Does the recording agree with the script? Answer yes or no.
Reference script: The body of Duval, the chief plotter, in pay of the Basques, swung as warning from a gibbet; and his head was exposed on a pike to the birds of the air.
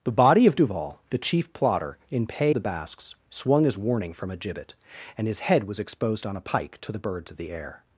no